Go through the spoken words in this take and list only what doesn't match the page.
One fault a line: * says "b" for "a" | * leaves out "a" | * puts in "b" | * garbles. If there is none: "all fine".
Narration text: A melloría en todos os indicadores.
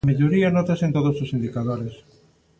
* puts in "nótase"